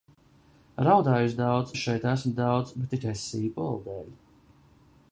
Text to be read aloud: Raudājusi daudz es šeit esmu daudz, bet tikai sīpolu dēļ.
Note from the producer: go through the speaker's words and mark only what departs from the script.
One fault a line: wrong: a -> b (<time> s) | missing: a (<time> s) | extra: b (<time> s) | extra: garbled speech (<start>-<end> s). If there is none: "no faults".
no faults